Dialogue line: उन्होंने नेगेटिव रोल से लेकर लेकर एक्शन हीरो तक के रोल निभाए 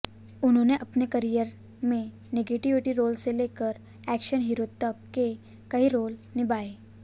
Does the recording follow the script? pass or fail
fail